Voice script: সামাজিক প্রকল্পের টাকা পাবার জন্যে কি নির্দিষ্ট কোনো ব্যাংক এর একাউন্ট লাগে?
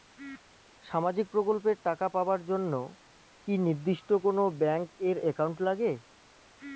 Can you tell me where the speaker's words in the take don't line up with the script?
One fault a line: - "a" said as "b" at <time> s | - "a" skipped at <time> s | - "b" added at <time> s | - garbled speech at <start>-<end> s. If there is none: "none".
none